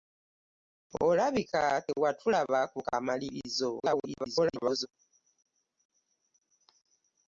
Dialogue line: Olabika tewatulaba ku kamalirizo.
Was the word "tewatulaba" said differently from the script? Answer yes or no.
no